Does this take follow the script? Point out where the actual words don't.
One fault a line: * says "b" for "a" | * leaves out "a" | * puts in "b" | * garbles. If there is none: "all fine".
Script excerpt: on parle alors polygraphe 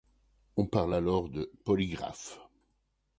* puts in "de"